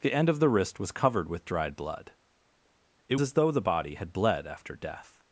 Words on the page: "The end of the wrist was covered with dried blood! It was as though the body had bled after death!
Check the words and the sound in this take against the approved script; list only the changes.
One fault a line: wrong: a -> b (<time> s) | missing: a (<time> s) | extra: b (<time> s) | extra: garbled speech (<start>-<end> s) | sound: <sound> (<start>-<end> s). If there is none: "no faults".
missing: was (3.2 s)